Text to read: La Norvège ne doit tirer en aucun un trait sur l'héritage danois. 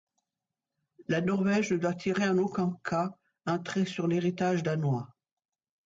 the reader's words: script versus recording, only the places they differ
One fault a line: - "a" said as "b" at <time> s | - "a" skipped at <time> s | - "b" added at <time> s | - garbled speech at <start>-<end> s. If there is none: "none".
- "cas" added at 2.8 s